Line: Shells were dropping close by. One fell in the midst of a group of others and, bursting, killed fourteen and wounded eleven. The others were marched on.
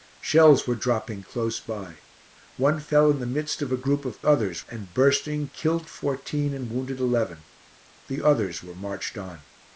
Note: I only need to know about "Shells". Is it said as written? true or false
true